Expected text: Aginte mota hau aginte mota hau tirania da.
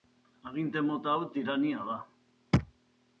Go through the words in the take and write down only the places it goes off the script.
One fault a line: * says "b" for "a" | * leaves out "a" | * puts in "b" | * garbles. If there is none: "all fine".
* leaves out "aginte mota hau"